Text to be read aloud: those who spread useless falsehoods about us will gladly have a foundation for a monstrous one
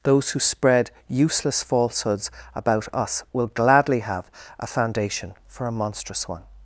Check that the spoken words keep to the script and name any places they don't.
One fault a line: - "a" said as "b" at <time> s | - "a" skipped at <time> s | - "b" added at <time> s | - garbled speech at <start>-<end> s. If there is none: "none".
none